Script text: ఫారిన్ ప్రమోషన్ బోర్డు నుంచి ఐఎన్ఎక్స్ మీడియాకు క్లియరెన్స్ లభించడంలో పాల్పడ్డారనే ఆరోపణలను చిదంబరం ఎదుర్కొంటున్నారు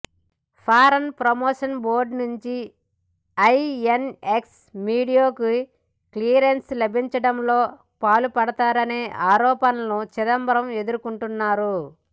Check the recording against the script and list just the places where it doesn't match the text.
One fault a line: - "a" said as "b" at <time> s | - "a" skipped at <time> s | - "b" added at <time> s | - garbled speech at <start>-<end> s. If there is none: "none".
none